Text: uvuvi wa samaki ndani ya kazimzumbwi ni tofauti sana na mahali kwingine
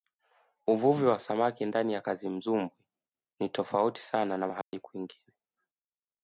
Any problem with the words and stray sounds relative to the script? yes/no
yes